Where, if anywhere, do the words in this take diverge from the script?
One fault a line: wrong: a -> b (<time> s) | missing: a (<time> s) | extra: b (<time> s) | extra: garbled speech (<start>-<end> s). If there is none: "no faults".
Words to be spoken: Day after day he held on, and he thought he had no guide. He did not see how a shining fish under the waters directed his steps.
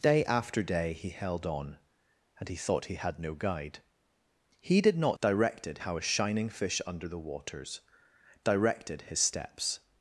wrong: see -> directed (5.2 s)